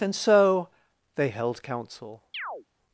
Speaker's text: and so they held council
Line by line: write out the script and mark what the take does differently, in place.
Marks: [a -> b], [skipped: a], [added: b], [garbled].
and so they held council